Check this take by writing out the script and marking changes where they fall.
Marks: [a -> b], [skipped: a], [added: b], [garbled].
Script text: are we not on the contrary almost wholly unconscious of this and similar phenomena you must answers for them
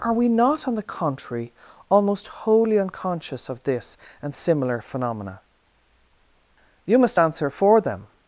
are we not on the contrary almost wholly unconscious of this and similar phenomena you must [answers -> answer] for them